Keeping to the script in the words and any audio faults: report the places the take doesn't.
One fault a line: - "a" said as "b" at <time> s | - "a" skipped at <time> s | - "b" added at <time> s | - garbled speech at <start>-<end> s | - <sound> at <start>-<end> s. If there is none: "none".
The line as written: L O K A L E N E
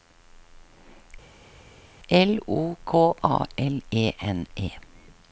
none